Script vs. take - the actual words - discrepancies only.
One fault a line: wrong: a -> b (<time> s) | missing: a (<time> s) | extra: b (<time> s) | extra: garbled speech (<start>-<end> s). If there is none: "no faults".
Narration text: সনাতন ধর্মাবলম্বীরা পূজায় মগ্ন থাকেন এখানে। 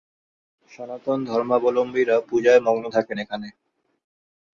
no faults